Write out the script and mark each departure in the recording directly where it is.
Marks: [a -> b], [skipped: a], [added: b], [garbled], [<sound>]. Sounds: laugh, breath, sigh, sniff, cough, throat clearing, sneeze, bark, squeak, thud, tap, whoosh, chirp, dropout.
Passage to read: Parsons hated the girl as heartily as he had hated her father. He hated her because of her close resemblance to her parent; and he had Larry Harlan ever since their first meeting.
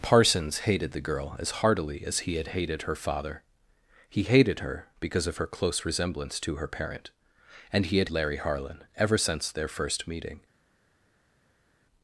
Parsons hated the girl as heartily as he had hated her father. He hated her because of her close resemblance to her parent; and he had Larry Harlan ever since their first meeting.